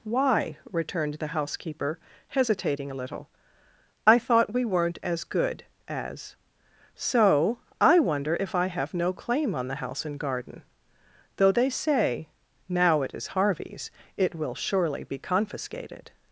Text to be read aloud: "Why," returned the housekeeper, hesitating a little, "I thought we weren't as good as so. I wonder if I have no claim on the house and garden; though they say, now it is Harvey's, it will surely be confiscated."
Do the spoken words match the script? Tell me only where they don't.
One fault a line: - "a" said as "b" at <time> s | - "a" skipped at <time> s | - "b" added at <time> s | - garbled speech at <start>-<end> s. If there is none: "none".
none